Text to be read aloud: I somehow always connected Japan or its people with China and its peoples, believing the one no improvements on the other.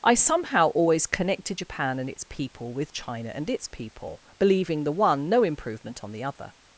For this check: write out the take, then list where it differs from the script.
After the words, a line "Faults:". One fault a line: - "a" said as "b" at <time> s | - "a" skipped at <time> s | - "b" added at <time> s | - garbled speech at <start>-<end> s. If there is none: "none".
I somehow always connected Japan and its people with China and its people, believing the one no improvement on the other.
Faults:
- "or" said as "and" at 2.0 s
- "peoples" said as "people" at 3.7 s
- "improvements" said as "improvement" at 5.4 s